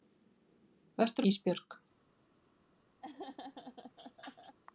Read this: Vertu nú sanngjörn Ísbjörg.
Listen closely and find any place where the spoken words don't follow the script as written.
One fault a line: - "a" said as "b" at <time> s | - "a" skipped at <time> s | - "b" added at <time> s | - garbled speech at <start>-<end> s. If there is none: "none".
- "nú sanngjörn" skipped at 1.3 s